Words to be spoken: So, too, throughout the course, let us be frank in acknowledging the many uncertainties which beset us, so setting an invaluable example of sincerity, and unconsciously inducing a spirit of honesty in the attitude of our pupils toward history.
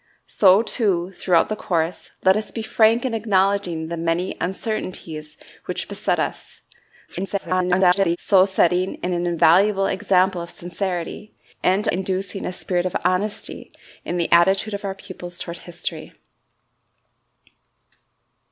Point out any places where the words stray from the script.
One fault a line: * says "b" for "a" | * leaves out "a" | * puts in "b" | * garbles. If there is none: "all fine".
* garbles
* leaves out "unconsciously"